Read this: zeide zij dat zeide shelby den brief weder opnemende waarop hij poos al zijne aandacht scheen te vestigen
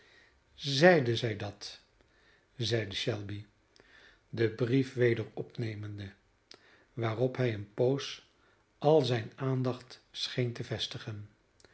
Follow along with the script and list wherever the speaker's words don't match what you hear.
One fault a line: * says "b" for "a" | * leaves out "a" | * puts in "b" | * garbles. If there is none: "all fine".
* puts in "een"